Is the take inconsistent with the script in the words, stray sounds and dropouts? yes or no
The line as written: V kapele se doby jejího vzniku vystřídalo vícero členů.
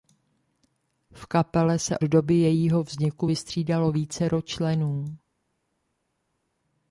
no